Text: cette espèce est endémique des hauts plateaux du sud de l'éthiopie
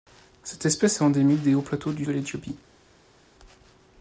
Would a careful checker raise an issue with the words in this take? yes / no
yes